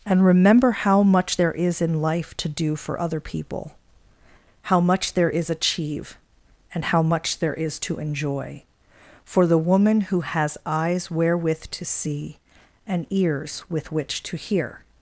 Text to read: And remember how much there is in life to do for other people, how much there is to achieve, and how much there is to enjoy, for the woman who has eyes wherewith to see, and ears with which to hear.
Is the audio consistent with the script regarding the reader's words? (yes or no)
no